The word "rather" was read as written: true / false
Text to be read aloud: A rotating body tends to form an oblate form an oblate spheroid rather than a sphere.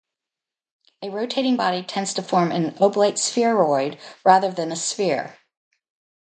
true